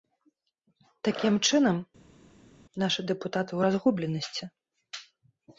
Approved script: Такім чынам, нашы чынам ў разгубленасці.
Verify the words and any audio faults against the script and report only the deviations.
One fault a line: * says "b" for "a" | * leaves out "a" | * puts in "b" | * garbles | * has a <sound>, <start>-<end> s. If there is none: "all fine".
* says "дэпутаты" for "чынам"